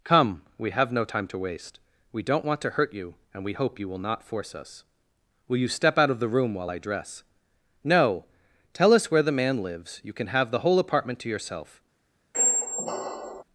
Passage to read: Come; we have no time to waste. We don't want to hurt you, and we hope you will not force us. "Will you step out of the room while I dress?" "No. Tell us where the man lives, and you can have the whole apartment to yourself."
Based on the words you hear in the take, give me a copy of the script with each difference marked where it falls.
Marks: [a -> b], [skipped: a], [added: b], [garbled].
Come; we have no time to waste. We don't want to hurt you, and we hope you will not force us. "Will you step out of the room while I dress?" "No. Tell us where the man lives, [skipped: and] you can have the whole apartment to yourself."